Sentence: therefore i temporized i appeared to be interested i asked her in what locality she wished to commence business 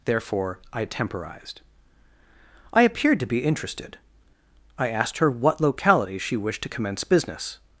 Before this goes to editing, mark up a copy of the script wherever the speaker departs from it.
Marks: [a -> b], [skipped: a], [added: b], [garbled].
therefore i temporized i appeared to be interested i asked her [skipped: in] what locality she wished to commence business